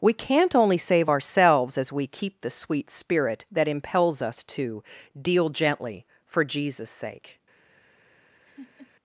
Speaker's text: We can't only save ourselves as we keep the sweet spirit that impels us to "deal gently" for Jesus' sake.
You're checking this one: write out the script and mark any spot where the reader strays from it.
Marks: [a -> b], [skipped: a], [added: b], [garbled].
We can't only save ourselves as we keep the sweet spirit that impels us to "deal gently" for Jesus' sake.